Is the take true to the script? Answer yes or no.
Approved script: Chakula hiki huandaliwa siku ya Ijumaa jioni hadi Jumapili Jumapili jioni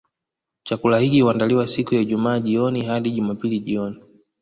no